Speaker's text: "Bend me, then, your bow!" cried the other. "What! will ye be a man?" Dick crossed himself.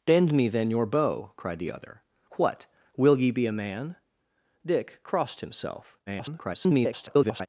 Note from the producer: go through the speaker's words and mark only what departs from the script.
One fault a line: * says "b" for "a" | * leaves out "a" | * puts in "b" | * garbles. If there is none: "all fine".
* garbles